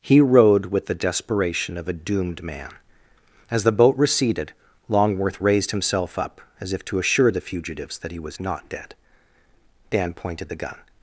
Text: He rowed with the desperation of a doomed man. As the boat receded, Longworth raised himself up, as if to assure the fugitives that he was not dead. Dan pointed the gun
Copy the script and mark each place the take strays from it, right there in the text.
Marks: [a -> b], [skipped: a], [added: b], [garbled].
He rowed with the desperation of a doomed man. As the boat receded, Longworth raised himself up, as if to assure the fugitives that he was not dead. Dan pointed the gun